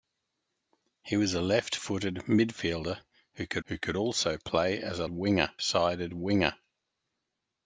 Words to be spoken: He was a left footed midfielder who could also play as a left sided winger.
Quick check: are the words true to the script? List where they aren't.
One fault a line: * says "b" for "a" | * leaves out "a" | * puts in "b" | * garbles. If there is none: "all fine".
* puts in "who could"
* says "winger" for "left"